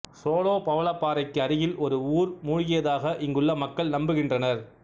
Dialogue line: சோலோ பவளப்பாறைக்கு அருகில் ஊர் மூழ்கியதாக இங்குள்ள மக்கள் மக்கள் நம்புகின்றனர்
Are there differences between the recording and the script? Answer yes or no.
yes